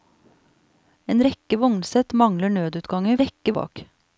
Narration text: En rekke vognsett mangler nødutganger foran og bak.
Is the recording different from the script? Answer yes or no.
yes